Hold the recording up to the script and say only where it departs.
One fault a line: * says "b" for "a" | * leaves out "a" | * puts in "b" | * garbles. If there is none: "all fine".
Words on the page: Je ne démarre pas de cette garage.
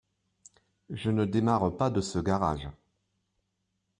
* says "ce" for "cette"